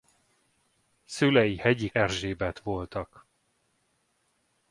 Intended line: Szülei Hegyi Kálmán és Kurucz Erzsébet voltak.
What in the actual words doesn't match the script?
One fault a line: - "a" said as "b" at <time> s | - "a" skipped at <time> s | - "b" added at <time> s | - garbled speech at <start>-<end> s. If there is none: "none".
- "Kálmán és Kurucz" skipped at 1.9 s